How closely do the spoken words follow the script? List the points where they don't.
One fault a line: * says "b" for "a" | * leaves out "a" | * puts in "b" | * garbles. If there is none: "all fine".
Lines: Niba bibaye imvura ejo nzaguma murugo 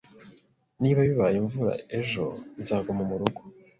all fine